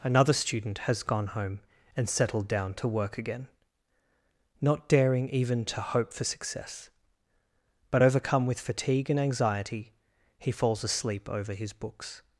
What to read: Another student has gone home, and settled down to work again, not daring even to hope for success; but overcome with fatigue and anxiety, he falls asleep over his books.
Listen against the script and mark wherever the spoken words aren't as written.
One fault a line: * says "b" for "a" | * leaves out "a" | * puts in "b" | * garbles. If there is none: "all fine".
all fine